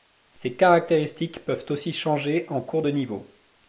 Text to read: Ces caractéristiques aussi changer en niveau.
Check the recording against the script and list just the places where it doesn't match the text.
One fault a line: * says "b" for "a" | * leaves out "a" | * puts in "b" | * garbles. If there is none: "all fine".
* puts in "peuvent"
* puts in "cours de"